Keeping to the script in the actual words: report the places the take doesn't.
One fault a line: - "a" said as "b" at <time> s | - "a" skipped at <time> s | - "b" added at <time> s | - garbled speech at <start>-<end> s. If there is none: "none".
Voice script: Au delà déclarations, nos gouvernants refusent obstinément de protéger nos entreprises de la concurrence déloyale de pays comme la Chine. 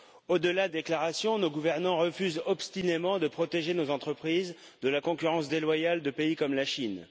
none